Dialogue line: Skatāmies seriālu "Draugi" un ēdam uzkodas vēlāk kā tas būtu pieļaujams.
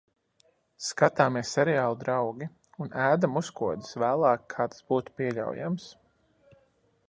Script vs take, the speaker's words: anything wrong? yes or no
no